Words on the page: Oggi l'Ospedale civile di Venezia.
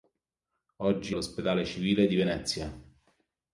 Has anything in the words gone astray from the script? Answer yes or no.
no